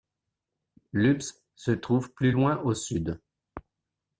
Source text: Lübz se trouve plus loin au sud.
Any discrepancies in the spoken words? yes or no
no